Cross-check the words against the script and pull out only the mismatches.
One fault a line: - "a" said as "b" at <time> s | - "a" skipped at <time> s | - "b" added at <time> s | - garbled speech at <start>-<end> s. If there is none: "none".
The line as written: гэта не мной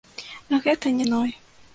none